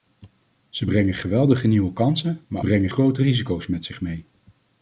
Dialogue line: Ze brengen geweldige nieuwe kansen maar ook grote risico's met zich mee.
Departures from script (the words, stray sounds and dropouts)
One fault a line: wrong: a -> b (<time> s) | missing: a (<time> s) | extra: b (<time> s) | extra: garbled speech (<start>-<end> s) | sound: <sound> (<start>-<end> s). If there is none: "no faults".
wrong: ook -> brengen (2.6 s)